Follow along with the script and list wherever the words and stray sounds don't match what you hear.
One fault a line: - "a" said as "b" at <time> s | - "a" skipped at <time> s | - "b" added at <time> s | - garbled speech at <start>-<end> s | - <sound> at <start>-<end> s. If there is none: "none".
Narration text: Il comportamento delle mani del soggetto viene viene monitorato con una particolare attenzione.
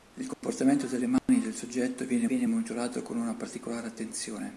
- dropout at 0.3-0.4 s
- dropout at 1.2-1.3 s